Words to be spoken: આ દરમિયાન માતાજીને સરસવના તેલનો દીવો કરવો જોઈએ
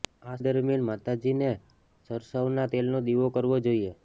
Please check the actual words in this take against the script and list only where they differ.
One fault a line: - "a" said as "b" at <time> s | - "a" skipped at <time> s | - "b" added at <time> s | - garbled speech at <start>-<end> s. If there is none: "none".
none